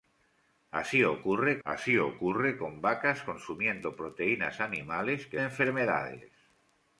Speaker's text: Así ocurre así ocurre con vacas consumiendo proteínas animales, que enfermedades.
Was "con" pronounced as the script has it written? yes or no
yes